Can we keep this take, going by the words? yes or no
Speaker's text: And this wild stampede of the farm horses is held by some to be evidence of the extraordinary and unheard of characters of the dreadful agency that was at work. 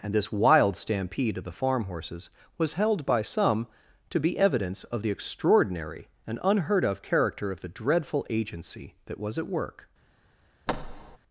no